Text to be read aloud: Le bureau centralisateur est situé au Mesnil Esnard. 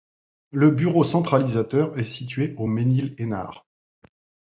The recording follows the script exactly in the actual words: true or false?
true